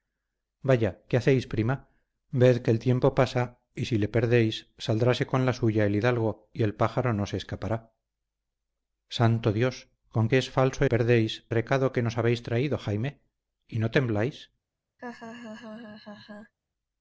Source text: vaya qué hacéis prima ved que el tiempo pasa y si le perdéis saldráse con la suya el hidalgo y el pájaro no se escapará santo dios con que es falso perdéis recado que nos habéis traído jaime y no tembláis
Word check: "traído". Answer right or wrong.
right